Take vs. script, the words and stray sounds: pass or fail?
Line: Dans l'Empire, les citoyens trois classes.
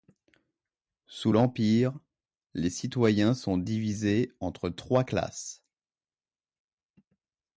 fail